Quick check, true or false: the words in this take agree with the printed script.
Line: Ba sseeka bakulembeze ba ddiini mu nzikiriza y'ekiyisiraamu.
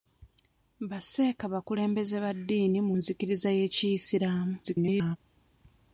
false